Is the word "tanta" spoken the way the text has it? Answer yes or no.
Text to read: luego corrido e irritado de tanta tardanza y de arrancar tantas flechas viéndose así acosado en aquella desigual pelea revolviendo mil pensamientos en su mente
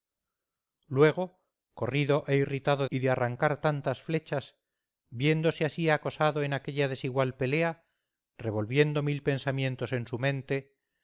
no